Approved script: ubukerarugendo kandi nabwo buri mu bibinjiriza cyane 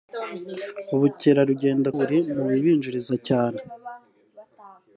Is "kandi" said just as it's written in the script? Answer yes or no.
no